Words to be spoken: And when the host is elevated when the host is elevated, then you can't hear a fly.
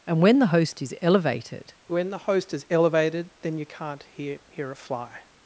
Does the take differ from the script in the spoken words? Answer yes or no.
yes